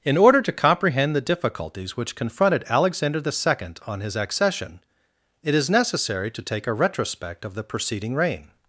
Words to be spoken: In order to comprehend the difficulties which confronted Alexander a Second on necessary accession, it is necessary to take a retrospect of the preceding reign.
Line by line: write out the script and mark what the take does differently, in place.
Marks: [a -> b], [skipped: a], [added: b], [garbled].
In order to comprehend the difficulties which confronted Alexander [a -> the] Second on [necessary -> his] accession, it is necessary to take a retrospect of the preceding reign.